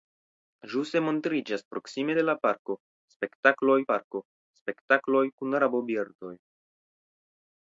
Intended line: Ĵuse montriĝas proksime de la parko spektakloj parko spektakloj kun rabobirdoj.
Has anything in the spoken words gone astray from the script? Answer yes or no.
no